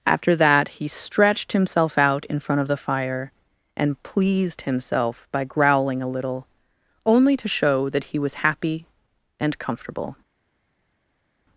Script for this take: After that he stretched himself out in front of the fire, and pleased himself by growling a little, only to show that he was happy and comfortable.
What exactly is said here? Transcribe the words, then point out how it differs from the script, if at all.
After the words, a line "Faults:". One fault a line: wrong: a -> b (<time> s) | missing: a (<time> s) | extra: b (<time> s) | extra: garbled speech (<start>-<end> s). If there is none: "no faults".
After that he stretched himself out in front of the fire, and pleased himself by growling a little, only to show that he was happy and comfortable.
Faults:
no faults